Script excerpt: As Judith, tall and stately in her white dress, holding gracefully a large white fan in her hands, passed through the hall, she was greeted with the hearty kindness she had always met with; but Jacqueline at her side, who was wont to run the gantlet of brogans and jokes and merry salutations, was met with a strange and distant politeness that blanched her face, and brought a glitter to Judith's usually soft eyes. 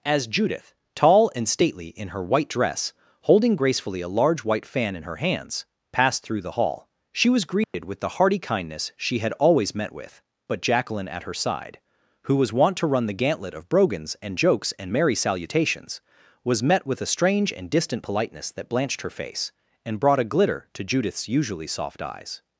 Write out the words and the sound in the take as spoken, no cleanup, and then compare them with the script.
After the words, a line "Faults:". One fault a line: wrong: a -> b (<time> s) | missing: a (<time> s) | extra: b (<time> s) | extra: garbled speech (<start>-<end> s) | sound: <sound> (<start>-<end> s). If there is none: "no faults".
As Judith, tall and stately in her white dress, holding gracefully a large white fan in her hands, passed through the hall, she was greeted with the hearty kindness she had always met with; but Jacqueline at her side, who was wont to run the gantlet of brogans and jokes and merry salutations, was met with a strange and distant politeness that blanched her face, and brought a glitter to Judith's usually soft eyes.
Faults:
sound: dropout (7.6-7.7 s)